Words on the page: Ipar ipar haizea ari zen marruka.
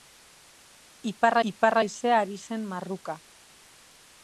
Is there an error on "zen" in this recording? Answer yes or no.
no